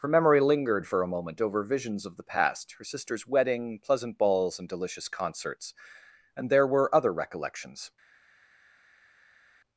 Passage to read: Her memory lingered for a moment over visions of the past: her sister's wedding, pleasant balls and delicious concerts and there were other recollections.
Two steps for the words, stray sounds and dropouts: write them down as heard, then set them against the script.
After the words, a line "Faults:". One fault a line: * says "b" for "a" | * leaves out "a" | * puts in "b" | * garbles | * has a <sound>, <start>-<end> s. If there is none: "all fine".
Her memory lingered for a moment over visions of the past: her sister's wedding, pleasant balls and delicious concerts and there were other recollections.
Faults:
all fine